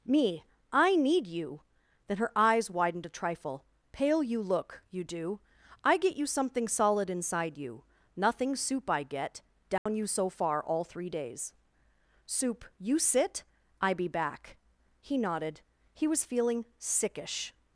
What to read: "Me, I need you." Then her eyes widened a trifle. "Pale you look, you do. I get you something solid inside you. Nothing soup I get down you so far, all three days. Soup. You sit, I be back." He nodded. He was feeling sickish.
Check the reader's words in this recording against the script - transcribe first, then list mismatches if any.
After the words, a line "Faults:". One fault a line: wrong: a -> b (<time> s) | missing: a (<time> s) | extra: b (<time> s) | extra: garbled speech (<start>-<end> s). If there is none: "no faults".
"Me, I need you." Then her eyes widened a trifle. "Pale you look, you do. I get you something solid inside you. Nothing soup I get down you so far, all three days. Soup. You sit, I be back." He nodded. He was feeling sickish.
Faults:
no faults